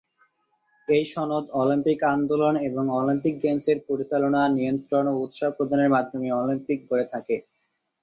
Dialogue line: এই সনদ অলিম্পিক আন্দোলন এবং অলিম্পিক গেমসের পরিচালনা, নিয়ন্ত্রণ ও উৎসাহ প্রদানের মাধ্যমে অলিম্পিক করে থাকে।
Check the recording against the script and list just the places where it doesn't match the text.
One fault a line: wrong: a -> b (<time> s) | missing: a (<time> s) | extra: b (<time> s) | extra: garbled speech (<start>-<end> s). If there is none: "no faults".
no faults